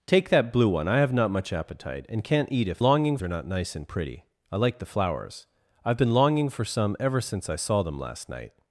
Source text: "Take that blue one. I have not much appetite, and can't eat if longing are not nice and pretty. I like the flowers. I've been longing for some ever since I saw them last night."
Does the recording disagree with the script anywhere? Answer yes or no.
no